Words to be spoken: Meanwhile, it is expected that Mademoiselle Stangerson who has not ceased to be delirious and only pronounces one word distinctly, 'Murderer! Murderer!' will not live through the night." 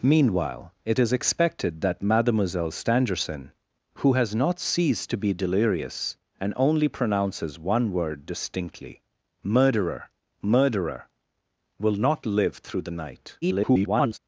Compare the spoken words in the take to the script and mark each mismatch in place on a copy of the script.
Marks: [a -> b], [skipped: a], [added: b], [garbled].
Meanwhile, it is expected that Mademoiselle Stangerson who has not ceased to be delirious and only pronounces one word distinctly, 'Murderer! Murderer!' will not live through the night." [garbled]